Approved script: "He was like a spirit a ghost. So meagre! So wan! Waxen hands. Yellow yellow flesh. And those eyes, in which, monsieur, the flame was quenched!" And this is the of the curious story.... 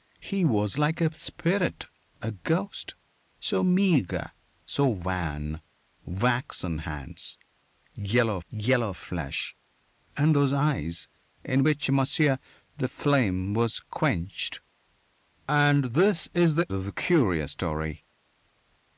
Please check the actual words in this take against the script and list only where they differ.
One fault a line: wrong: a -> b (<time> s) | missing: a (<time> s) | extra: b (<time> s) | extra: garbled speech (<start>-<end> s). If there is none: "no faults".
no faults